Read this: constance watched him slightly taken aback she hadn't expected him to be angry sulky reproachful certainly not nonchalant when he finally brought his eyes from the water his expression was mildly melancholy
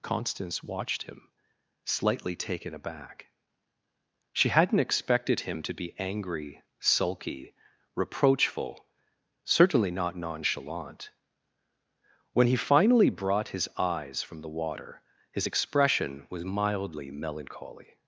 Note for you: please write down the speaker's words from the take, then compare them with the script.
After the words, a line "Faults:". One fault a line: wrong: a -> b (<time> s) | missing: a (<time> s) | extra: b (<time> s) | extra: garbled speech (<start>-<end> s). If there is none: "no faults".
constance watched him slightly taken aback she hadn't expected him to be angry sulky reproachful certainly not nonchalant when he finally brought his eyes from the water his expression was mildly melancholy
Faults:
no faults